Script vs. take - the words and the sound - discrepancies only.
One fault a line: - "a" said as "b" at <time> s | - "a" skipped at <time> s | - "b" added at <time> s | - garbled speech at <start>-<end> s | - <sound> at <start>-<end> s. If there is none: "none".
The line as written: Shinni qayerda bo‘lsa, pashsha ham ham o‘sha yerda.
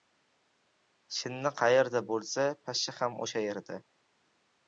- "ham" skipped at 3.2 s